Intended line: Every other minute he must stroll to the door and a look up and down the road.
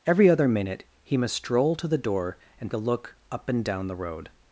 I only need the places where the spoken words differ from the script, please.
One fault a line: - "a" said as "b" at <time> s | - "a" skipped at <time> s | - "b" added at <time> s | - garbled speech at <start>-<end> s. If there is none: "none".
none